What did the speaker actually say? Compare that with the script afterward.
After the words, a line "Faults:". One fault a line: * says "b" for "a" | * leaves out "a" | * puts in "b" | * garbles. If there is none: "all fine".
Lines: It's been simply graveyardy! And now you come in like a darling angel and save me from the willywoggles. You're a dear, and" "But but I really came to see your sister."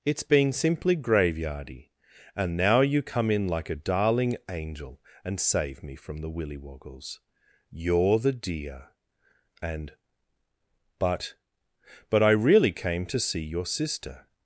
It's been simply graveyardy! And now you come in like a darling angel and save me from the willywoggles. You're the dear, and" "But but I really came to see your sister."
Faults:
* says "the" for "a"